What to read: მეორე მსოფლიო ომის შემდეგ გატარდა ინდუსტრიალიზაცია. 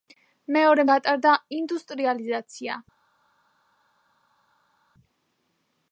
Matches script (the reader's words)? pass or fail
fail